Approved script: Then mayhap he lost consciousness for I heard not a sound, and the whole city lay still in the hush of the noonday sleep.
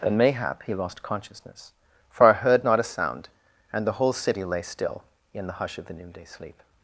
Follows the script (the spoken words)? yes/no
yes